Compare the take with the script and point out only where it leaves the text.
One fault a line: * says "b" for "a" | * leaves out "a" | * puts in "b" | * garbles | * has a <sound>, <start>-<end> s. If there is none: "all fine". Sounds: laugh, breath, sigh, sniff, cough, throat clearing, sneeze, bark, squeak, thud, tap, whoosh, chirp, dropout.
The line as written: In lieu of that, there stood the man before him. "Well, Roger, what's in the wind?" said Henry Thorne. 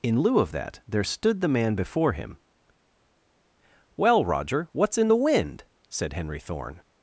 all fine